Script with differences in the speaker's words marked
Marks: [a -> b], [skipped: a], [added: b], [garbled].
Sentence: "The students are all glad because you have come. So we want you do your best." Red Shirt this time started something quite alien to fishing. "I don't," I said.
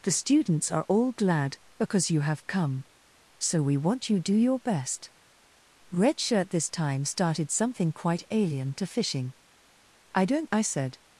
"The students are all glad because you have come. So we want you do your best." Red Shirt this time started something quite alien to fishing. "I don't," I said.